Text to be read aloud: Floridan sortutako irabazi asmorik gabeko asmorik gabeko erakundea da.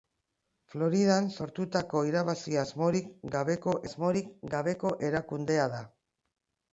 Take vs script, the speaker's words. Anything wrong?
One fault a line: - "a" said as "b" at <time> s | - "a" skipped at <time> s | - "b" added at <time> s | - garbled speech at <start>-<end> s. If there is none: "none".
none